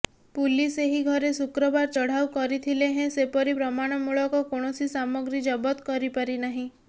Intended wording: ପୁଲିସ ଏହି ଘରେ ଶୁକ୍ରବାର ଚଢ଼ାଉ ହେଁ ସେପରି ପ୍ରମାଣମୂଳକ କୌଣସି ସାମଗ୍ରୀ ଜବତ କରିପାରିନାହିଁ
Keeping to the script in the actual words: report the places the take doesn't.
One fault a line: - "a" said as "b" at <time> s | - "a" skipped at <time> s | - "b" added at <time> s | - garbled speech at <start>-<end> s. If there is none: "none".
- "କରିଥିଲେ" added at 2.3 s